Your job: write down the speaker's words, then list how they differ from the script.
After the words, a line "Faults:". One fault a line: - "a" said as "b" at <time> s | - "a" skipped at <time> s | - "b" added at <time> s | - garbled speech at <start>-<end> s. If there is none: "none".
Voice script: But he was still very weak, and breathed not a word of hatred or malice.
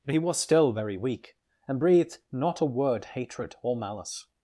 But he was still very weak, and breathed not a word hatred or malice.
Faults:
- "of" skipped at 3.0 s